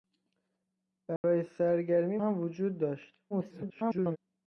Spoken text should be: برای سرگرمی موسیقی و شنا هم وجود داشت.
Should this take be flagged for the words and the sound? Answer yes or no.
yes